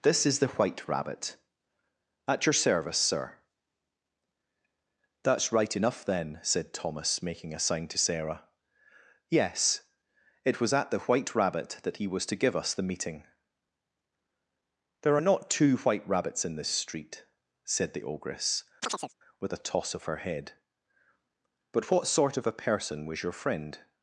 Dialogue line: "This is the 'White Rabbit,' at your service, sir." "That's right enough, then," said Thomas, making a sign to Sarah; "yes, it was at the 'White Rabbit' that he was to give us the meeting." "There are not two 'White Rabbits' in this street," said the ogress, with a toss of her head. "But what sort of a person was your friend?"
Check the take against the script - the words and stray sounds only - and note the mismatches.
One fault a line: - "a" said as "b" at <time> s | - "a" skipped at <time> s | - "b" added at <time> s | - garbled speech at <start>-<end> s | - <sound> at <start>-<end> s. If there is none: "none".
- chirp at 18.8-19.1 s